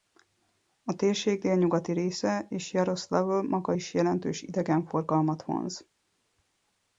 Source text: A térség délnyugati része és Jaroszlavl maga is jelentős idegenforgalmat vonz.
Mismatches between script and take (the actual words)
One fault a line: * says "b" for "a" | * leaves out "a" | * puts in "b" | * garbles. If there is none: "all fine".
all fine